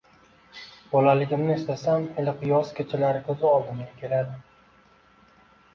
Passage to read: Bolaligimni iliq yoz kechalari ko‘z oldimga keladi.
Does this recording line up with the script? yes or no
no